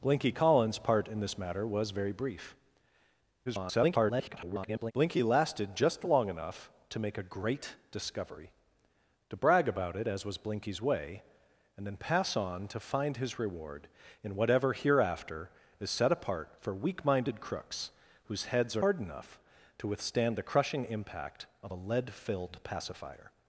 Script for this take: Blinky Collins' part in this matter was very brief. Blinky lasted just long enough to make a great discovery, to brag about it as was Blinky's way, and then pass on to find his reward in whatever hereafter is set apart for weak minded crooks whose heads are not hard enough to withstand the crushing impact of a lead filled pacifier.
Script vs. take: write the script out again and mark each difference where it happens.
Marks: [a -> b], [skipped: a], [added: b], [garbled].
Blinky Collins' part in this matter was very brief. [garbled] Blinky lasted just long enough to make a great discovery, to brag about it as was Blinky's way, and then pass on to find his reward in whatever hereafter is set apart for weak minded crooks whose heads are [skipped: not] hard enough to withstand the crushing impact of a lead filled pacifier.